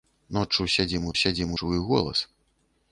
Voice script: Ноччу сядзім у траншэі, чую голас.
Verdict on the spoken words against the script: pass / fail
fail